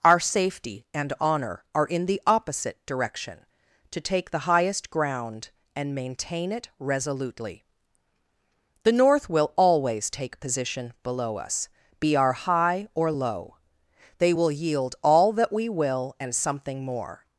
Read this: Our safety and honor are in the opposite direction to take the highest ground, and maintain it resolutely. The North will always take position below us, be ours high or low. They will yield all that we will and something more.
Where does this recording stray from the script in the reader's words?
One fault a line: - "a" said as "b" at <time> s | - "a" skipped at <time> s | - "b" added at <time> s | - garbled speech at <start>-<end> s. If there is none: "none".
- "ours" said as "our" at 12.2 s